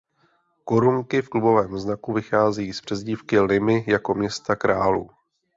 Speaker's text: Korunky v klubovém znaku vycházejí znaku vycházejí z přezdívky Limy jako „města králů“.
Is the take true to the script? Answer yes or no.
no